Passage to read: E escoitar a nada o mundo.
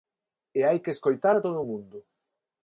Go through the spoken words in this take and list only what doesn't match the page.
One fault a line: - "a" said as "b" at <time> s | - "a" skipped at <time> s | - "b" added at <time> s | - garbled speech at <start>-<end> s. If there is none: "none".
- "hai que" added at 0.7 s
- "nada" said as "todo" at 1.4 s